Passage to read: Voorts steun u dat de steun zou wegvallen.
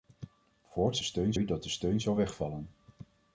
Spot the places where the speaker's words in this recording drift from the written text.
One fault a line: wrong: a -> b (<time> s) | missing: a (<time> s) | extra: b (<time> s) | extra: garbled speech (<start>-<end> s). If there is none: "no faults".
no faults